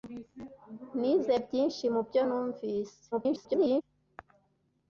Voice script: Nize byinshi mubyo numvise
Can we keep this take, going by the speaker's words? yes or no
no